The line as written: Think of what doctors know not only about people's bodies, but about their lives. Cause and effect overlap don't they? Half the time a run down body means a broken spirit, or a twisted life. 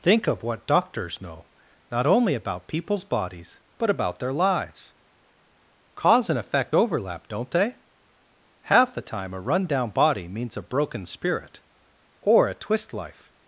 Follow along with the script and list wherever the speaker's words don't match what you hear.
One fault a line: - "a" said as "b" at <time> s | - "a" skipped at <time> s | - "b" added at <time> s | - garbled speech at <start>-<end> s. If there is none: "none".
- "twisted" said as "twist" at 12.5 s